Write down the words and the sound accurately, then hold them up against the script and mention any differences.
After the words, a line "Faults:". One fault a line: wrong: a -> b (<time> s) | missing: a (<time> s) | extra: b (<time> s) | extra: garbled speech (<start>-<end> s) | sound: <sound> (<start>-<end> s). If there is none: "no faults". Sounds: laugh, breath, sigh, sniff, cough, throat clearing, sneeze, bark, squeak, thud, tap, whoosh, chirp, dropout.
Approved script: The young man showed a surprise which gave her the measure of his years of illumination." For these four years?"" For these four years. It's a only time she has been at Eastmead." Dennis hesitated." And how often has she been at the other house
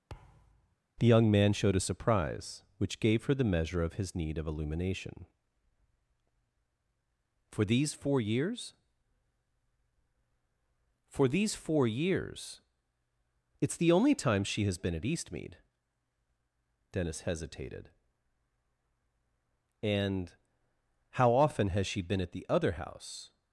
The young man showed a surprise which gave her the measure of his need of illumination." For these four years?"" For these four years. It's the only time she has been at Eastmead." Dennis hesitated." And how often has she been at the other house
Faults:
sound: thud (0.1-0.8 s)
wrong: years -> need (4.1 s)
wrong: a -> the (13.8 s)